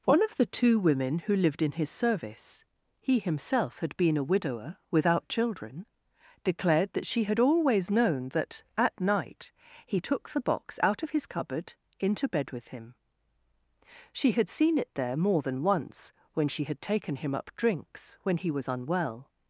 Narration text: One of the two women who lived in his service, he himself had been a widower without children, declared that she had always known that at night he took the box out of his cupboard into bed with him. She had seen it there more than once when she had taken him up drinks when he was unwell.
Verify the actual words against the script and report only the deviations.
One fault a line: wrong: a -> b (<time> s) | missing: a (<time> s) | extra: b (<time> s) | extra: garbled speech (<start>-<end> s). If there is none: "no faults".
no faults